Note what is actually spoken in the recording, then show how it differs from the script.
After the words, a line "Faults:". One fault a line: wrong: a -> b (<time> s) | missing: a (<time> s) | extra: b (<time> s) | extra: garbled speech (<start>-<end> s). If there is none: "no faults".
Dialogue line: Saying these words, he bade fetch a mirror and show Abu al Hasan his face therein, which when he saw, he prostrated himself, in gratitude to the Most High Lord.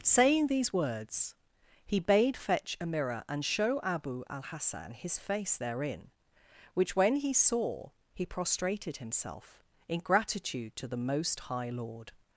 Saying these words, he bade fetch a mirror and show Abu al Hasan his face therein, which when he saw, he prostrated himself, in gratitude to the Most High Lord.
Faults:
no faults